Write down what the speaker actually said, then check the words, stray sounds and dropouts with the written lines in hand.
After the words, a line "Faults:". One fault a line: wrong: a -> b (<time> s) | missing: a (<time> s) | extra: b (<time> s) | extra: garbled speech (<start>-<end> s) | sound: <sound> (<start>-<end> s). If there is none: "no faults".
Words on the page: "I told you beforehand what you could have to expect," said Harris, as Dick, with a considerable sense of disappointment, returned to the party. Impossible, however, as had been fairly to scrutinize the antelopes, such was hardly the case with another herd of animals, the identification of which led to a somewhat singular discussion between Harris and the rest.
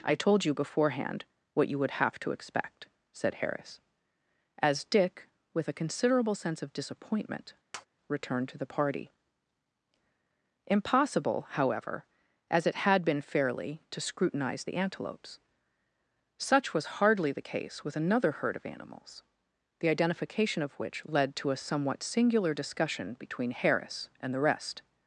"I told you beforehand what you would have to expect," said Harris, as Dick, with a considerable sense of disappointment, returned to the party. Impossible, however, as it had been fairly to scrutinize the antelopes, such was hardly the case with another herd of animals, the identification of which led to a somewhat singular discussion between Harris and the rest.
Faults:
wrong: could -> would (1.8 s)
sound: tap (7.7-7.9 s)
extra: it (12.7 s)